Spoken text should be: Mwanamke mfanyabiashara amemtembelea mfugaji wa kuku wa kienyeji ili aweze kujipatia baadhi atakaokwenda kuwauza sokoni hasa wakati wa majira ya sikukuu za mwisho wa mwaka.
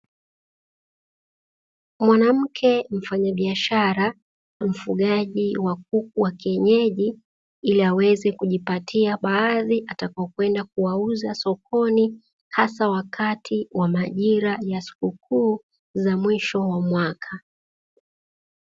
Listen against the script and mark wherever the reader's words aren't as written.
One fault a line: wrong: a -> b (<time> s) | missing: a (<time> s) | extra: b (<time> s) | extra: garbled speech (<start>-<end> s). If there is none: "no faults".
missing: amemtembelea (4.1 s)